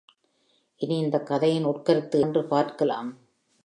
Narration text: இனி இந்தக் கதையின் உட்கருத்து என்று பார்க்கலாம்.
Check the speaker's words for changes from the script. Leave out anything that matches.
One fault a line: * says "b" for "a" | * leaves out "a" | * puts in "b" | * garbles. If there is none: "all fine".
all fine